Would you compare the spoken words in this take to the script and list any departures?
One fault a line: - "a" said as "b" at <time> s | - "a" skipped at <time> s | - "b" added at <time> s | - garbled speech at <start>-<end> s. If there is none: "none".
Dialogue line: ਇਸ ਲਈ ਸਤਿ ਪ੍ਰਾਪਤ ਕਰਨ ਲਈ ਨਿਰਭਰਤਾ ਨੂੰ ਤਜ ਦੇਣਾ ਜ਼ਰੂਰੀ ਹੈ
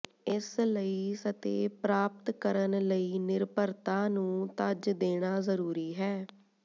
none